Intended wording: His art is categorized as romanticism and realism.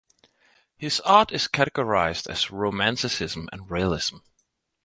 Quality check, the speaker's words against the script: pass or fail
pass